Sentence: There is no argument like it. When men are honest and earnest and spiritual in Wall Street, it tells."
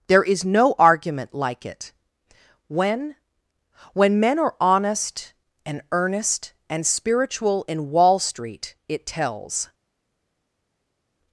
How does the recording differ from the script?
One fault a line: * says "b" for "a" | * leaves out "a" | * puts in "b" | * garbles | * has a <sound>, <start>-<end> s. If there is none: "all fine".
* puts in "When"